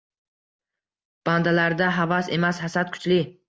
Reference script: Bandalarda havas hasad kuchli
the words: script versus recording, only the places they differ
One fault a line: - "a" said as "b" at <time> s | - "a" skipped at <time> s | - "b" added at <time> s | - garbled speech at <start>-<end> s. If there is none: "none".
- "emas" added at 2.4 s